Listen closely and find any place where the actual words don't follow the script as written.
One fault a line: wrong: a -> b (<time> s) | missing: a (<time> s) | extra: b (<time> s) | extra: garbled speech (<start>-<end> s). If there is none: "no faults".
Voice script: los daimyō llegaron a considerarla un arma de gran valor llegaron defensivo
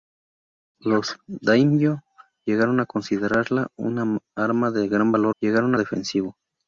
no faults